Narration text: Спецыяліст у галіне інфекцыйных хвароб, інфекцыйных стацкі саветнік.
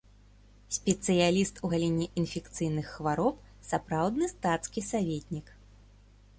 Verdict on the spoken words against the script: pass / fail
fail